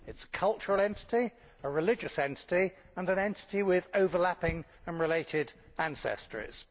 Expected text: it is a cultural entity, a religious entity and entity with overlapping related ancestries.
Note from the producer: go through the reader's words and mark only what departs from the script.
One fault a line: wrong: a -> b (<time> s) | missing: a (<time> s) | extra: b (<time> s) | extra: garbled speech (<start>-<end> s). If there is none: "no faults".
extra: an (3.1 s)
extra: and (4.9 s)